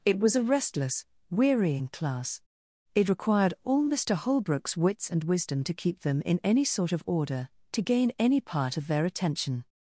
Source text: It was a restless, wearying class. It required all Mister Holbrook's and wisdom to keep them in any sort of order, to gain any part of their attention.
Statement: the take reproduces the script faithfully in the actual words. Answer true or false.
false